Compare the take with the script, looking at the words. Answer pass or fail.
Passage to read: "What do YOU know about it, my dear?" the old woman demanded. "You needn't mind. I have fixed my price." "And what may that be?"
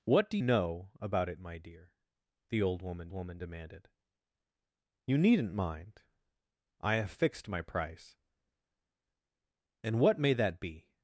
fail